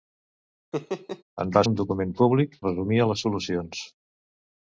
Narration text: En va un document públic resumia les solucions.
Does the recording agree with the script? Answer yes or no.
yes